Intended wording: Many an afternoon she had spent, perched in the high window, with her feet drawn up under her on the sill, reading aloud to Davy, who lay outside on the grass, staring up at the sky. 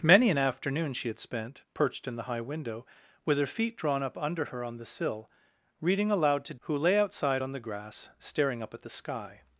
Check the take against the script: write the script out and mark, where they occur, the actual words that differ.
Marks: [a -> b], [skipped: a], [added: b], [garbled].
Many an afternoon she had spent, perched in the high window, with her feet drawn up under her on the sill, reading aloud to [skipped: Davy,] who lay outside on the grass, staring up at the sky.